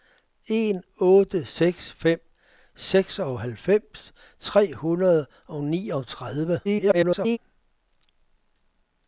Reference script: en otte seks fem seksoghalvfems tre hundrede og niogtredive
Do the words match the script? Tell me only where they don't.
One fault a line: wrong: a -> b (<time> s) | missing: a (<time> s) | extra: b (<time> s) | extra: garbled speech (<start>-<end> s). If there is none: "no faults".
extra: garbled speech (6.6-7.4 s)